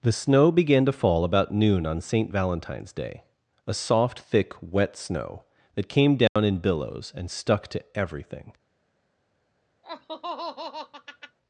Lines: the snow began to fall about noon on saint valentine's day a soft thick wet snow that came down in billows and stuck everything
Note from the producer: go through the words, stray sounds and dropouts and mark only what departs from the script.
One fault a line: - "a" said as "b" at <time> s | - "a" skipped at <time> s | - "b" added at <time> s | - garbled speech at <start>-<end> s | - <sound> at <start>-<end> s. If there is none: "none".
- dropout at 6.3-6.4 s
- "to" added at 7.7 s
- laugh at 9.8-11.4 s